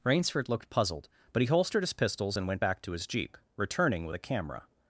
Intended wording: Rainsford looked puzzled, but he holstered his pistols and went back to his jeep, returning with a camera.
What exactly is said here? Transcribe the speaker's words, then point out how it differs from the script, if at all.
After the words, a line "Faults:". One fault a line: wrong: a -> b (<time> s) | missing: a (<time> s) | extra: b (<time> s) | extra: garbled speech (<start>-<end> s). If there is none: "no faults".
Rainsford looked puzzled, but he holstered his pistols and went back to his jeep, returning with a camera.
Faults:
no faults